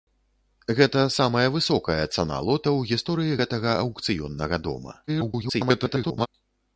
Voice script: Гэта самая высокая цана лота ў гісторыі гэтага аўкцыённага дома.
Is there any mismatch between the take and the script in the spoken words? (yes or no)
yes